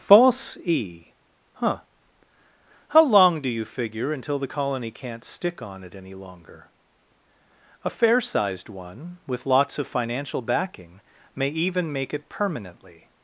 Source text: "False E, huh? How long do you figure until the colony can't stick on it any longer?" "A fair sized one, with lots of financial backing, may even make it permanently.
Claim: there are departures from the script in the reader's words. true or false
false